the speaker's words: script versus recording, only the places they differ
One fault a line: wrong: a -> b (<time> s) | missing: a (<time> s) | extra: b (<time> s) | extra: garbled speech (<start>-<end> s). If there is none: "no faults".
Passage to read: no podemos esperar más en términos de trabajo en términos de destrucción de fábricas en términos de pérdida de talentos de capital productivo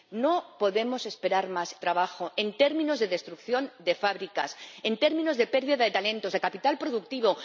missing: en términos de (1.8 s)